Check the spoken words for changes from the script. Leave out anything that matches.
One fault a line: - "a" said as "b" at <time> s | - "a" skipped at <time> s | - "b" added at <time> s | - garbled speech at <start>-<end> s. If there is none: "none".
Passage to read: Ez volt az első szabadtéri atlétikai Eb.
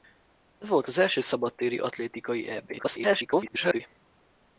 - garbled speech at 2.8-3.8 s